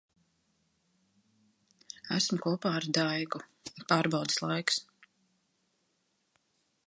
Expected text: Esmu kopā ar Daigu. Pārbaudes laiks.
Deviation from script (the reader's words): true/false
false